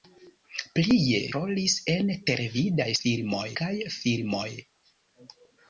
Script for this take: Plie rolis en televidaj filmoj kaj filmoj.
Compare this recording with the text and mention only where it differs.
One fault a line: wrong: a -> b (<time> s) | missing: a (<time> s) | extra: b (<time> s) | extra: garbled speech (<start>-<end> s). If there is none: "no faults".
no faults